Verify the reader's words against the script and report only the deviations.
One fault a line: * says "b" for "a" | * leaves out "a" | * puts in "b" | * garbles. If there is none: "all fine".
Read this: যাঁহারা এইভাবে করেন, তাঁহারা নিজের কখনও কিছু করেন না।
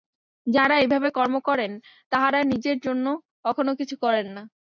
* puts in "কর্ম"
* puts in "জন্য"